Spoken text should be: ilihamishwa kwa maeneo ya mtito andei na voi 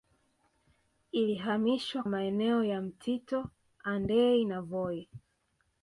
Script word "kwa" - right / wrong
wrong